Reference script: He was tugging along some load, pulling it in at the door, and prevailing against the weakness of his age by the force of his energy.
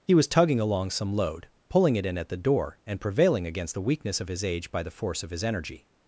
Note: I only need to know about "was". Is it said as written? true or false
true